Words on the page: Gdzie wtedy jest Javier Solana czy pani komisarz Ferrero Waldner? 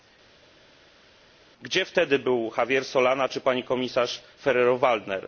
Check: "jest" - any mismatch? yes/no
yes